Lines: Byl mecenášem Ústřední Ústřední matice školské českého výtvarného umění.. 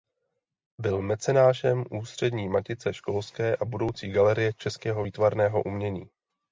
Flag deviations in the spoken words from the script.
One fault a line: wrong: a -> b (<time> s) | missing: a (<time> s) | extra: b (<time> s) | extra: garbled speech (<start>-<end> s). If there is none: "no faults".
missing: Ústřední (2.5 s)
extra: a budoucí galerie (3.5 s)